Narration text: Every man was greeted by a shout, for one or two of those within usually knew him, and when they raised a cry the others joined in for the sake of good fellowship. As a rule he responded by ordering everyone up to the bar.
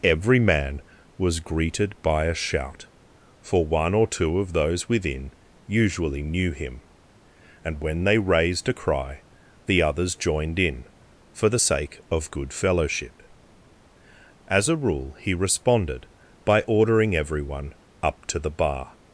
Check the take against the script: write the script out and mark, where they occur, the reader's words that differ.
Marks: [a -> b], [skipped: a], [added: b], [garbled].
Every man was greeted by a shout, for one or two of those within usually knew him, and when they raised a cry the others joined in for the sake of good fellowship. As a rule he responded by ordering everyone up to the bar.